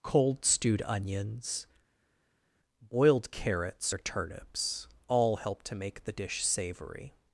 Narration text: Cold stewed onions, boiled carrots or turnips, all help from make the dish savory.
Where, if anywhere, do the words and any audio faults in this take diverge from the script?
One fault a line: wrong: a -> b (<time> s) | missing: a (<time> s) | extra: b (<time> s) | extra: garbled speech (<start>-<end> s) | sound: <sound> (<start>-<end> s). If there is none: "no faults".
wrong: from -> to (5.6 s)